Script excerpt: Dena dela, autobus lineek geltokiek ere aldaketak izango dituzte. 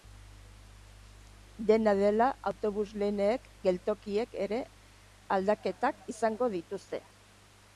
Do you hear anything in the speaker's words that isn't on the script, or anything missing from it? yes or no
no